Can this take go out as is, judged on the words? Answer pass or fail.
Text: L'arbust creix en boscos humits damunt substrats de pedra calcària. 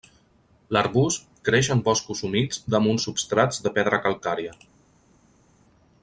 pass